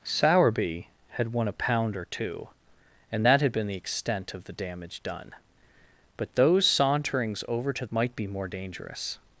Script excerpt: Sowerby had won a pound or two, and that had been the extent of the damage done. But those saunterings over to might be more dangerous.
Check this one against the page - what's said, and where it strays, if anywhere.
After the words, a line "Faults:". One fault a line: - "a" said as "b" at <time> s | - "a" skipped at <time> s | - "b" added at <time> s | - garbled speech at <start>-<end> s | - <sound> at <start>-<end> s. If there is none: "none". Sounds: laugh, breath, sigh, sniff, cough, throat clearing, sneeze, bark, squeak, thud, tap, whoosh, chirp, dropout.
Sowerby had won a pound or two, and that had been the extent of the damage done. But those saunterings over to might be more dangerous.
Faults:
none